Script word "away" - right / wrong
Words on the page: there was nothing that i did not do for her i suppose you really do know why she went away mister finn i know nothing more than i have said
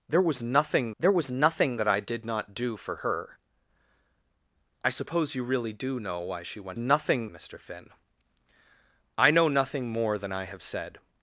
wrong